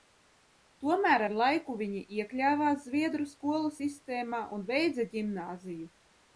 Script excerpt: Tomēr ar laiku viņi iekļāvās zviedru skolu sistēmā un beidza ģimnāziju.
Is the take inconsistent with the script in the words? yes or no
no